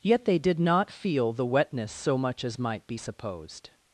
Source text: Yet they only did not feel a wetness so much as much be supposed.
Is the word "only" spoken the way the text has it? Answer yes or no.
no